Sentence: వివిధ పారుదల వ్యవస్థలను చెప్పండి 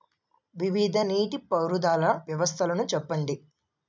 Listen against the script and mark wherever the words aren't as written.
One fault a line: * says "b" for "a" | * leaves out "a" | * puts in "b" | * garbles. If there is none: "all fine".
* puts in "నీటి"